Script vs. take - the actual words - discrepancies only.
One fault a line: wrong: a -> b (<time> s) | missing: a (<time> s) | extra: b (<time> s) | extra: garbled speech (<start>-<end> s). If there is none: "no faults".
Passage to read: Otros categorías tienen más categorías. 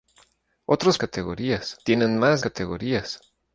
no faults